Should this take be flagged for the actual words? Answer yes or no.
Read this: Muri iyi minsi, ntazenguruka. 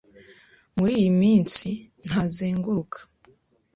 no